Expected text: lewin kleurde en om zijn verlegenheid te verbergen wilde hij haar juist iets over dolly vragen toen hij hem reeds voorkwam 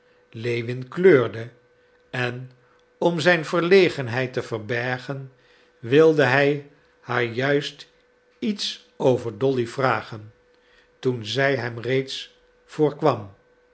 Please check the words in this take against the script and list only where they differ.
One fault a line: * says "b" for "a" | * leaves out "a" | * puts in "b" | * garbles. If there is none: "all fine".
* says "zij" for "hij"